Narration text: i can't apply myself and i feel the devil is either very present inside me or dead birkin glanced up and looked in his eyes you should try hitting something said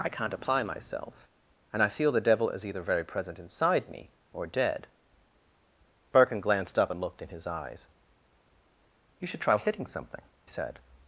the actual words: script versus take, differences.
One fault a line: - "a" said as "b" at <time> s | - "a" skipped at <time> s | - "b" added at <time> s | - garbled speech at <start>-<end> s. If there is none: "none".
none